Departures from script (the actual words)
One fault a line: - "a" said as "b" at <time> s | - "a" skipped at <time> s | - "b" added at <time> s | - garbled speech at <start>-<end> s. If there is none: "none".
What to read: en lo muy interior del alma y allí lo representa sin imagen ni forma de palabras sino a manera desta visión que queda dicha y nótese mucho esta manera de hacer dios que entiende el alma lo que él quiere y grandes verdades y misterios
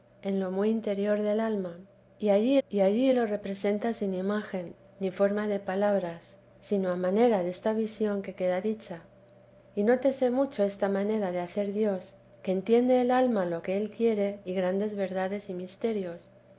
- "y allí" added at 2.7 s